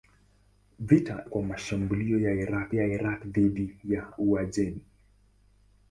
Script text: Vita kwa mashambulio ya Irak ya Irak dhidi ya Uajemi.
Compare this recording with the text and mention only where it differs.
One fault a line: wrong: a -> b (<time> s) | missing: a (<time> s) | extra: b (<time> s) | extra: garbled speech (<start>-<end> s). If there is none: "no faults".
no faults